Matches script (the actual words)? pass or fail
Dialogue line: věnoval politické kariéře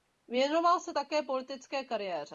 fail